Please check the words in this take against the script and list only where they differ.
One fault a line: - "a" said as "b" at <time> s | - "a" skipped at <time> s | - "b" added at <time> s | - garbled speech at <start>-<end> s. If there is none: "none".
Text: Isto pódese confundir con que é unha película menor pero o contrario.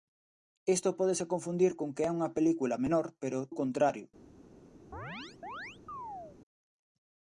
none